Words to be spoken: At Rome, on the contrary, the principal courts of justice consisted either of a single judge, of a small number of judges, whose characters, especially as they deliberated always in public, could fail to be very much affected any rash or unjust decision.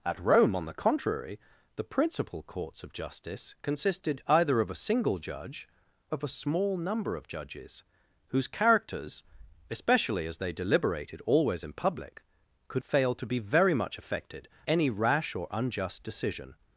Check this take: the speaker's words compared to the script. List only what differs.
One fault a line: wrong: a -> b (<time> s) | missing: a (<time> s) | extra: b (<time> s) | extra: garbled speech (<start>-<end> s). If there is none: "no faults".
no faults